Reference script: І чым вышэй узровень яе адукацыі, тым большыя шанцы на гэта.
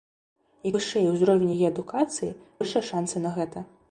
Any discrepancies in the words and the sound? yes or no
yes